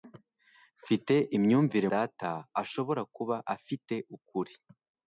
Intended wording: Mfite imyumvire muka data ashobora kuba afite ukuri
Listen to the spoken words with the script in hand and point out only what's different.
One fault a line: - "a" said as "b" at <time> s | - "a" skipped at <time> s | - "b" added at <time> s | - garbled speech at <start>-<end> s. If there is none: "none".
- "muka" skipped at 1.9 s